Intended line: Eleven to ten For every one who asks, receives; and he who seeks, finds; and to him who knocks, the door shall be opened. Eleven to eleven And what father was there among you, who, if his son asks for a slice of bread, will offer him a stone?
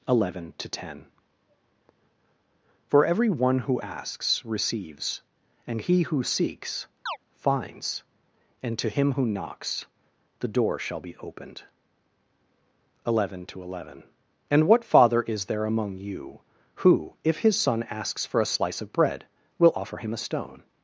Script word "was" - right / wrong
wrong